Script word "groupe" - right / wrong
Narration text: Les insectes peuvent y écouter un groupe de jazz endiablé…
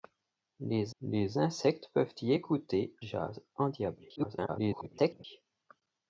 wrong